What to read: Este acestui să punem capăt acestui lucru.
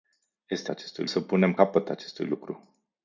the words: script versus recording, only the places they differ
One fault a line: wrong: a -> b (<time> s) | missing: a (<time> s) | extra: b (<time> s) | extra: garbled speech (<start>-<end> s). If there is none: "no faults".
no faults